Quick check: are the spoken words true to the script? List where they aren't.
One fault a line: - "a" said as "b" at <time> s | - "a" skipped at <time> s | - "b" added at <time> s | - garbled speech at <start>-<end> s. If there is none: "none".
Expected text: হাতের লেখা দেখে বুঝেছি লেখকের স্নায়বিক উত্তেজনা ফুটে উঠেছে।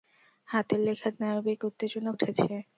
- "দেখে বুঝেছি লেখকের" skipped at 1.1 s
- "ফুটে" skipped at 2.1 s